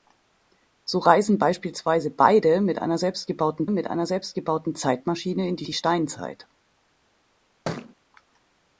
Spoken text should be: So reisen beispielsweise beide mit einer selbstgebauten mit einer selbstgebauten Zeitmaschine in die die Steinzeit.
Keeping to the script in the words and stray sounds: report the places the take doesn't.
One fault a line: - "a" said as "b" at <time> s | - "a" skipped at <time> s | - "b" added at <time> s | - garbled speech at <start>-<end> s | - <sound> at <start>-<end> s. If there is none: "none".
- thud at 7.7-8.0 s